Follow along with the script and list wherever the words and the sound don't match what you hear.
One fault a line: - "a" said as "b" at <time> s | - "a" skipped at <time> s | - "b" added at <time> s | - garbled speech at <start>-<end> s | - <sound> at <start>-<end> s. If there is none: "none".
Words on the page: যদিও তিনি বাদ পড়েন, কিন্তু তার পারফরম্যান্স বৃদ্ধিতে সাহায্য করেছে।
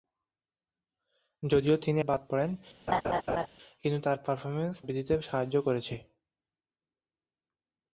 - laugh at 2.9-3.5 s